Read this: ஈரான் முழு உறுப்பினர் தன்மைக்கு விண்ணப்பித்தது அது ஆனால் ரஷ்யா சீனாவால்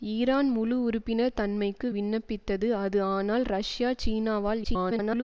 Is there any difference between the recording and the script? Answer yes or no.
yes